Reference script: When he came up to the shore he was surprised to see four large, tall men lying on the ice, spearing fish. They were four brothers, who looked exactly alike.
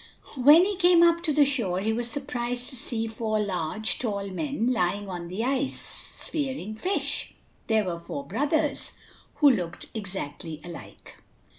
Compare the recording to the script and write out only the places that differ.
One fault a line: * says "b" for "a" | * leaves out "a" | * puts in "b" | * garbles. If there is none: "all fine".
all fine